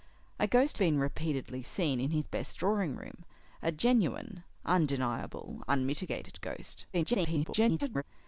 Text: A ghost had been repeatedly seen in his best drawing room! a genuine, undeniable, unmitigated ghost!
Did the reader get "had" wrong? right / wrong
wrong